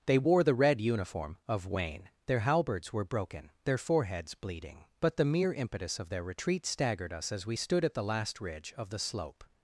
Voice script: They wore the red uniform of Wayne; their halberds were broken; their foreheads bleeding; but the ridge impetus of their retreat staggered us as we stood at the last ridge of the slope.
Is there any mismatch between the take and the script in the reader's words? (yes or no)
yes